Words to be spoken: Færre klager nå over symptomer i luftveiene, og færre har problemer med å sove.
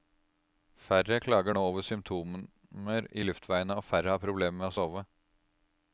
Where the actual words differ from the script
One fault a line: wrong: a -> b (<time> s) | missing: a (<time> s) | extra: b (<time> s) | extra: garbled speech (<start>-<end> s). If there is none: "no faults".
no faults